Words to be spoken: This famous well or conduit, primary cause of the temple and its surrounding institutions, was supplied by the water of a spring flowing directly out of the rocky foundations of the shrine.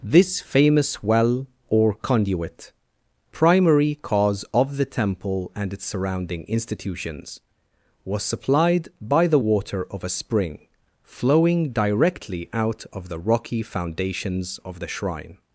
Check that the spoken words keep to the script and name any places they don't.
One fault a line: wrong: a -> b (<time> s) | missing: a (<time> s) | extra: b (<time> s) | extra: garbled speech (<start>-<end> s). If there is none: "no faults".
no faults